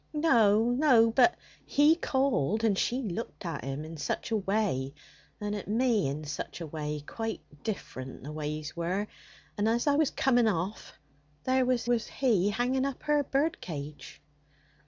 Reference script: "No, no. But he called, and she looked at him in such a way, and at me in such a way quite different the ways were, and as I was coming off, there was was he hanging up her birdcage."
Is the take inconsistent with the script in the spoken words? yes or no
no